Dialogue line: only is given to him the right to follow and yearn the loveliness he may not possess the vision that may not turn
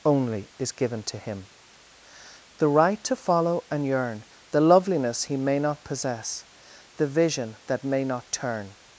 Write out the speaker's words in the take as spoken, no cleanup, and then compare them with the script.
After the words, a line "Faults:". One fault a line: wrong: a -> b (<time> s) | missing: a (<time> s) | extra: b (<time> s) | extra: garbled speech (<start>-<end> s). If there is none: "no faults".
only is given to him the right to follow and yearn the loveliness he may not possess the vision that may not turn
Faults:
no faults